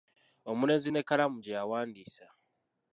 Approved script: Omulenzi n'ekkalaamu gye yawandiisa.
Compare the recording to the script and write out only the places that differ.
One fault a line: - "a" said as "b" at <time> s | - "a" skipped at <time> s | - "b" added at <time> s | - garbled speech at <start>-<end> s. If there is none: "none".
none